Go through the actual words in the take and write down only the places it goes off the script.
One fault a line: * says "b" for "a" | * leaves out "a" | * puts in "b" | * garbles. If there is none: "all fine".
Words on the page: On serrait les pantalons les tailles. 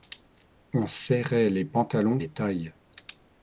all fine